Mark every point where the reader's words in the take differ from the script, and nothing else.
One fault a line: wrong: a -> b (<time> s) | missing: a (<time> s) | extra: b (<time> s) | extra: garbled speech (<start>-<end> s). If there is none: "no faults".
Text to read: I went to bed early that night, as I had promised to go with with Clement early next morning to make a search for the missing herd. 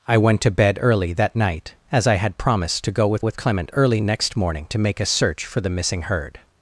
no faults